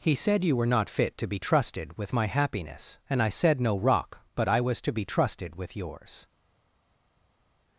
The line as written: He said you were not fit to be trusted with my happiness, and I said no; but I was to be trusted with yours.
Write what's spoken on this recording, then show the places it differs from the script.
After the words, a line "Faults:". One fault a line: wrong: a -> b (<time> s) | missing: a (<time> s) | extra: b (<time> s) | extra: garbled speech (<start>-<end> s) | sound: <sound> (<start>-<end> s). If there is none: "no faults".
He said you were not fit to be trusted with my happiness, and I said no; rock but I was to be trusted with yours.
Faults:
extra: rock (3.8 s)